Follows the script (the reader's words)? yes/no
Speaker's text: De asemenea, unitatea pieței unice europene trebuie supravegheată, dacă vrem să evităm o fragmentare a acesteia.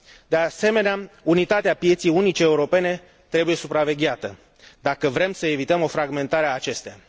yes